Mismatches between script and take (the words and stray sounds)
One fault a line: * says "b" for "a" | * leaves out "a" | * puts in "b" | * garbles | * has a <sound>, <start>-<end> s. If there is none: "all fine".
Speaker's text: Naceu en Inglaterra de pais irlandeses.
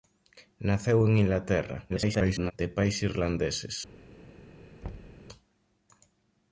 * garbles
* has a thud, 4.8-5.2 s